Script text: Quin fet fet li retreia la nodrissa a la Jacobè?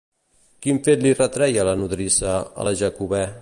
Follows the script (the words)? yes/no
no